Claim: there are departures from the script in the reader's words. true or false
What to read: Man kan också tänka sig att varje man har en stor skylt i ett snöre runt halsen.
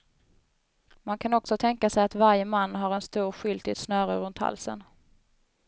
false